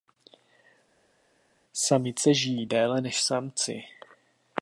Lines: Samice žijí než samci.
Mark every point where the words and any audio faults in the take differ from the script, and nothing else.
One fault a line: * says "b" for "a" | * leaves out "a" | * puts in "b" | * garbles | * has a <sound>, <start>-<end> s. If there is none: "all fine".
* puts in "déle"